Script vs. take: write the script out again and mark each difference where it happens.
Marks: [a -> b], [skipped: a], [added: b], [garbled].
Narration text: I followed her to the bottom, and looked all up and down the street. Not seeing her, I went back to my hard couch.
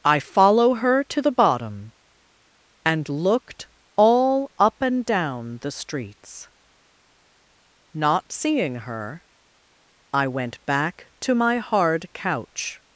I [followed -> follow] her to the bottom, and looked all up and down the [street. -> streets] Not seeing her, I went back to my hard couch.